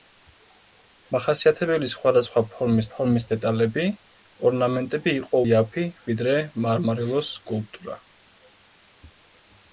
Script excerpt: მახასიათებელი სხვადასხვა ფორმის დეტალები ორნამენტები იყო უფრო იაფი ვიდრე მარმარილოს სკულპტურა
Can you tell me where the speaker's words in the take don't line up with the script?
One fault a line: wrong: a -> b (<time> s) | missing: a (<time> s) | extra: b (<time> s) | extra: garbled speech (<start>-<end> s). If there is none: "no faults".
extra: ფორმის (2.9 s)
missing: უფრო (5.4 s)